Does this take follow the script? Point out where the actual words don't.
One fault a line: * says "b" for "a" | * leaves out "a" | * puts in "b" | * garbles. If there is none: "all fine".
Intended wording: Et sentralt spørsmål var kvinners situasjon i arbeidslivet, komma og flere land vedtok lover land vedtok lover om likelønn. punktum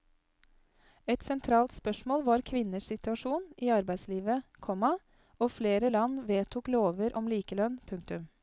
* leaves out "land vedtok lover"